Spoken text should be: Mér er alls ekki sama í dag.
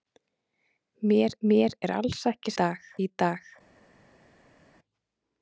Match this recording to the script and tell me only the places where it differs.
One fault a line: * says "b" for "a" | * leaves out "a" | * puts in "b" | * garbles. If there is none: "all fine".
* puts in "mér"
* says "dag" for "sama"